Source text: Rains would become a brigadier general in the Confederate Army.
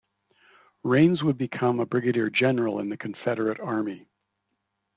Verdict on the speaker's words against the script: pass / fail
pass